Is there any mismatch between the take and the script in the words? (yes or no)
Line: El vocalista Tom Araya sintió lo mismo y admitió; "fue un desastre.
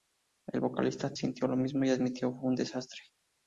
yes